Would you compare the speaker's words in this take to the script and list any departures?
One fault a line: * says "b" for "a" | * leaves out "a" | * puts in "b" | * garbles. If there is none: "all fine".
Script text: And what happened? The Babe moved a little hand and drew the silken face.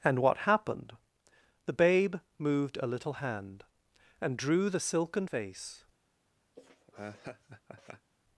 all fine